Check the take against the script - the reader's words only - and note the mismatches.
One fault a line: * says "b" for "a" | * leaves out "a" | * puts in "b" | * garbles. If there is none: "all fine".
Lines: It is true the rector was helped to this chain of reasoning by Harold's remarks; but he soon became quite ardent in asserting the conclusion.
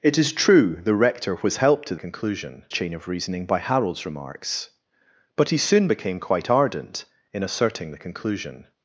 * says "conclusion" for "this"